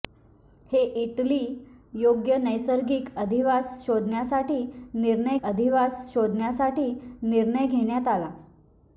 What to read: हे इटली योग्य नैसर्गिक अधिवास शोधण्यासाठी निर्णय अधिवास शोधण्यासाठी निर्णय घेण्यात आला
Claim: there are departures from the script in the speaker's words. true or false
false